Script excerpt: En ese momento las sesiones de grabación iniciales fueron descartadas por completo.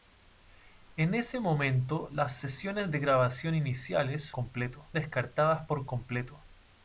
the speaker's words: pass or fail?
fail